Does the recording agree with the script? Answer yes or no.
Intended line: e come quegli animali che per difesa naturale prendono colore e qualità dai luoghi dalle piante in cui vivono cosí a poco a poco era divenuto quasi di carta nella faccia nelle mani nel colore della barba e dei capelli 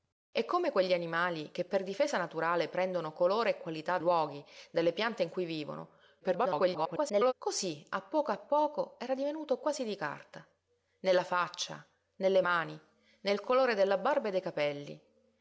no